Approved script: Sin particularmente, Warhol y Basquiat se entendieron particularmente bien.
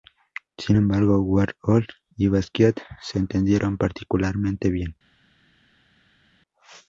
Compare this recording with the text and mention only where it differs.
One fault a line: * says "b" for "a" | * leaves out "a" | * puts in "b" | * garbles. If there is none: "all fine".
* says "embargo" for "particularmente"